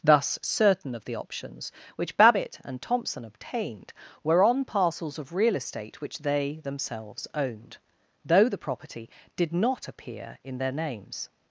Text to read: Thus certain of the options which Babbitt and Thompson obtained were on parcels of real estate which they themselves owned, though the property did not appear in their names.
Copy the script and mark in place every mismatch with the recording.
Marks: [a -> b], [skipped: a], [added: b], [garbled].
Thus certain of the options which Babbitt and Thompson obtained were on parcels of real estate which they themselves owned, though the property did not appear in their names.